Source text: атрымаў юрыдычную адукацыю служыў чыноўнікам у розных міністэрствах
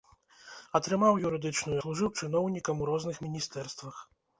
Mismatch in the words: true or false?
true